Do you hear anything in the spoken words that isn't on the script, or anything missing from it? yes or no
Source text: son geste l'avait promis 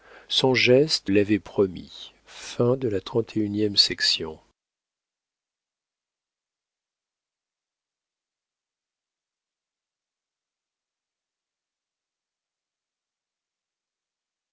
no